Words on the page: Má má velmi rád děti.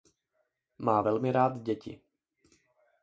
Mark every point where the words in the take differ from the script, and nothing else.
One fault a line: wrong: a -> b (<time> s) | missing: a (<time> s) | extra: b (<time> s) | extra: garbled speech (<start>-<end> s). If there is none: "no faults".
missing: má (1.0 s)